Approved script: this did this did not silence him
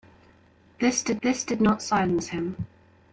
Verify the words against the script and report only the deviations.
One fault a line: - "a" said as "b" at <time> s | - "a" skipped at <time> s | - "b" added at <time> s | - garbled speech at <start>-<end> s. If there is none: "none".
none